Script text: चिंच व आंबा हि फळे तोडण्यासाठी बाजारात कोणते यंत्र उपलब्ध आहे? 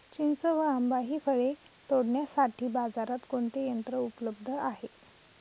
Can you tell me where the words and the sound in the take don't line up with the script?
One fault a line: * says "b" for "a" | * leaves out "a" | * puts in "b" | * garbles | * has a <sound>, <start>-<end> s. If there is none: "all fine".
all fine